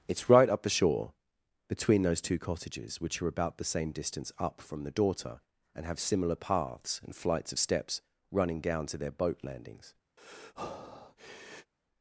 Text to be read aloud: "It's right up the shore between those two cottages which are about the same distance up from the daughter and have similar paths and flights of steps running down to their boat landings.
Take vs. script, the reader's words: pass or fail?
pass